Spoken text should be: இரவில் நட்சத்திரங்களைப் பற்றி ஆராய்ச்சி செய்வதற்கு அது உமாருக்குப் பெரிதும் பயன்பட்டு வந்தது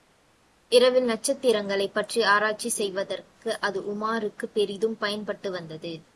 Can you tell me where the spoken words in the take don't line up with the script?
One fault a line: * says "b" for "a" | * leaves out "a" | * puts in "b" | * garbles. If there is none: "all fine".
all fine